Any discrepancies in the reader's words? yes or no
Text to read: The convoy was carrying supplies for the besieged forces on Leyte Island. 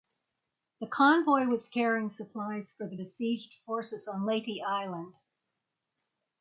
no